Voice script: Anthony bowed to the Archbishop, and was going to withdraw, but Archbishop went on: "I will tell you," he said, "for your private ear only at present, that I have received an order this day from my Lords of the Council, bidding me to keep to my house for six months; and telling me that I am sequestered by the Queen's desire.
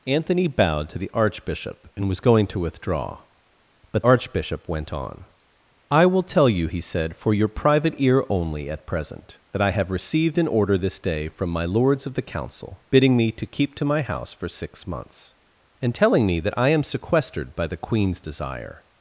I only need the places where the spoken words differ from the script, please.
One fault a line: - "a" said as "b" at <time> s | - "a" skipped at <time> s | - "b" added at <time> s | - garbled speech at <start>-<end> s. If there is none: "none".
none